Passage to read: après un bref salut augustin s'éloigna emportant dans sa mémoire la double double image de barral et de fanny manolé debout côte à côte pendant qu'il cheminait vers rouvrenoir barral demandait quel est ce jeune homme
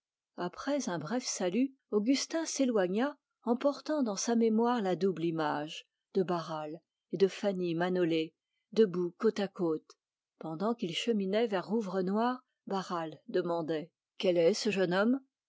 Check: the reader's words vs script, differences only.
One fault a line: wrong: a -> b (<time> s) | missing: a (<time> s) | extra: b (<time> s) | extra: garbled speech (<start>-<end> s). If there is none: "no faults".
missing: double (5.2 s)